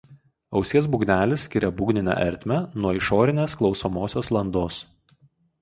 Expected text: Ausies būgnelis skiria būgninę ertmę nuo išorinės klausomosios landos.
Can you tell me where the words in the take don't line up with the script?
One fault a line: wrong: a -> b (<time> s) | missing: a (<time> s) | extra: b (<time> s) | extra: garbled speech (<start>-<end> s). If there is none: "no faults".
no faults